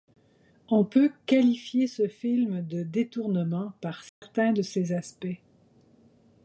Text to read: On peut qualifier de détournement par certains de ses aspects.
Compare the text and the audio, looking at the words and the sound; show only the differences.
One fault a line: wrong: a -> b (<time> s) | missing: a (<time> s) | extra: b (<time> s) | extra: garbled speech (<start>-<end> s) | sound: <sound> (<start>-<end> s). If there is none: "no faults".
extra: ce film (1.9 s)
sound: dropout (4.1-4.2 s)